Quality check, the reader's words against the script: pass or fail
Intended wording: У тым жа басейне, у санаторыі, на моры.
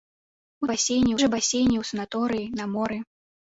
fail